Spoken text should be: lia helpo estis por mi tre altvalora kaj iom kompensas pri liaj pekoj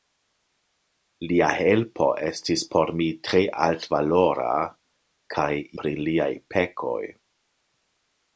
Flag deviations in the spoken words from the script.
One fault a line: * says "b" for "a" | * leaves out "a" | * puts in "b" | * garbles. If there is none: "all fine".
* leaves out "iom kompensas"